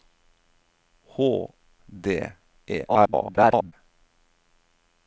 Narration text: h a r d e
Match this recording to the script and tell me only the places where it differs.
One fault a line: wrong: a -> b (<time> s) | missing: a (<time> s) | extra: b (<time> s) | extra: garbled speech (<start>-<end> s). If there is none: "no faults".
missing: a r (1.2 s)
extra: garbled speech (2.9-3.7 s)